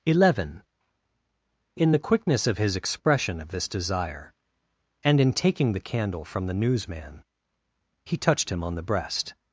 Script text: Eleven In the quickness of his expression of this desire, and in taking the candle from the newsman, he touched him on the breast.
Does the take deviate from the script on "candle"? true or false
false